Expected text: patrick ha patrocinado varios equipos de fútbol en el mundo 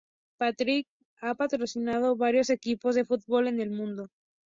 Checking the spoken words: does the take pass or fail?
pass